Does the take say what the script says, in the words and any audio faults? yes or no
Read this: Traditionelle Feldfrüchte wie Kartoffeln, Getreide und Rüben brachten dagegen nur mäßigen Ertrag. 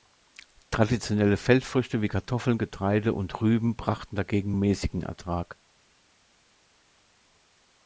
no